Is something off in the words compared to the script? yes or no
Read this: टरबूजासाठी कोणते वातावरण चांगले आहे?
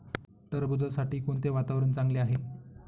no